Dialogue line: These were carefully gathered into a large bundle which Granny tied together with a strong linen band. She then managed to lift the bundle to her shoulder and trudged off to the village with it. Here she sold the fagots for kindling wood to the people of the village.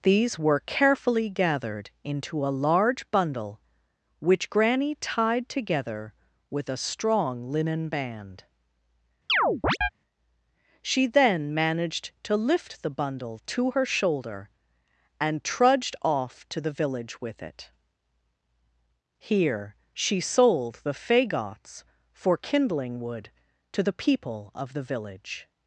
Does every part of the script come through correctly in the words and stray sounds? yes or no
no